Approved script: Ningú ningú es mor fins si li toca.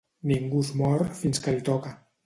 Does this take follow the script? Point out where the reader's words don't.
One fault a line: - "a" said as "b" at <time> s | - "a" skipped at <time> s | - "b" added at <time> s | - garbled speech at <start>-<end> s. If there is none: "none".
- "ningú" skipped at 0.6 s
- "si" said as "que" at 1.4 s